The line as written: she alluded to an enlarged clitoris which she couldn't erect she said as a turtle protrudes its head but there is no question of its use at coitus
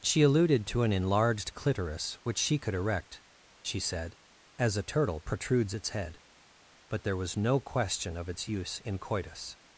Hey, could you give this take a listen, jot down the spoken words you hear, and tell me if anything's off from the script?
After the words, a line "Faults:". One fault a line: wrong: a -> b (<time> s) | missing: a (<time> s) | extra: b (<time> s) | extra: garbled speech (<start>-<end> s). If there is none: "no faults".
she alluded to an enlarged clitoris which she could erect she said as a turtle protrudes its head but there was no question of its use in coitus
Faults:
wrong: couldn't -> could (2.6 s)
wrong: is -> was (7.2 s)
wrong: at -> in (8.8 s)